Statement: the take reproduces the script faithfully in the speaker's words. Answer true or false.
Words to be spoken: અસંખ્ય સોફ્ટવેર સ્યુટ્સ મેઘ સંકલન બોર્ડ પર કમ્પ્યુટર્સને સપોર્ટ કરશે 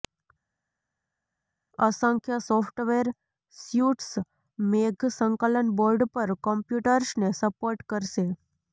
true